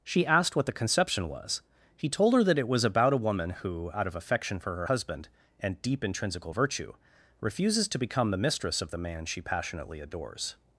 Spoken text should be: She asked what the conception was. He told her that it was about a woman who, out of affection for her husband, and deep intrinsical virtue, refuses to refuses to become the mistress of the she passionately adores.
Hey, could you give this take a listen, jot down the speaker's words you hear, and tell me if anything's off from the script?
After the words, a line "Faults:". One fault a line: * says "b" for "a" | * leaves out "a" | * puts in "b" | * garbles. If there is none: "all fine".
She asked what the conception was. He told her that it was about a woman who, out of affection for her husband, and deep intrinsical virtue, refuses to become the mistress of the man she passionately adores.
Faults:
* leaves out "refuses to"
* puts in "man"